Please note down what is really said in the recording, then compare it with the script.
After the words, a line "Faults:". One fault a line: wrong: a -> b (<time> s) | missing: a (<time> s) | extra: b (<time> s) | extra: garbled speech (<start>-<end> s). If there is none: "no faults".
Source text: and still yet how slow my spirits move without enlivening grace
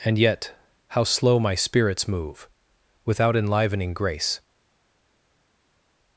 and yet how slow my spirits move without enlivening grace
Faults:
missing: still (0.2 s)